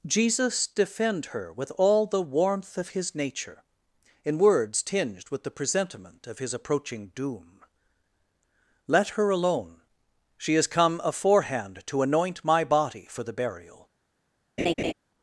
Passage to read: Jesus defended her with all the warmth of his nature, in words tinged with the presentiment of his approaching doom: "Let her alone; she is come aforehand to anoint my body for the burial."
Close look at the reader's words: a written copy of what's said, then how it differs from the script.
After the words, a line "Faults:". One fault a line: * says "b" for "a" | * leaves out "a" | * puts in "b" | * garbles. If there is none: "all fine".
Jesus defend her with all the warmth of his nature, in words tinged with the presentiment of his approaching doom: "Let her alone; she is come aforehand to anoint my body for the burial."
Faults:
* says "defend" for "defended"